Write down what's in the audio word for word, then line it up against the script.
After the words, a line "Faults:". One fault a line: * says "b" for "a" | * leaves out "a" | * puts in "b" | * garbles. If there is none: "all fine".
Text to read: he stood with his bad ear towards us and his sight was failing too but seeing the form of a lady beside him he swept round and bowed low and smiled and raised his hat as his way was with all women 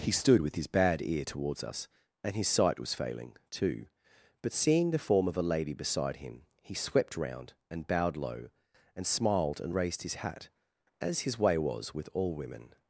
he stood with his bad ear towards us and his sight was failing too but seeing the form of a lady beside him he swept round and bowed low and smiled and raised his hat as his way was with all women
Faults:
all fine